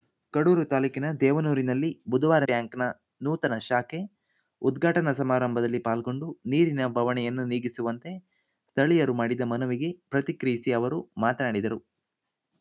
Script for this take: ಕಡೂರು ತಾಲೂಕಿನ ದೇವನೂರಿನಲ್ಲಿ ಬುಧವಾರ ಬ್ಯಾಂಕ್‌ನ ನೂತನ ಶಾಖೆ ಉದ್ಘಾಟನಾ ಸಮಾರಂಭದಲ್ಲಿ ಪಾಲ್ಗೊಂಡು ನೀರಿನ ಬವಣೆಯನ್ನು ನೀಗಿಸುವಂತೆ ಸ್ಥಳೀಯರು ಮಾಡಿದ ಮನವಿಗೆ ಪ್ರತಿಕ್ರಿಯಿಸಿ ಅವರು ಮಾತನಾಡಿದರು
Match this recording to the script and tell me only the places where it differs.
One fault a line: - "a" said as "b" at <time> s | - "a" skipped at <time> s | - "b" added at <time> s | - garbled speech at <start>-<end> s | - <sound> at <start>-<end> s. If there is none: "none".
none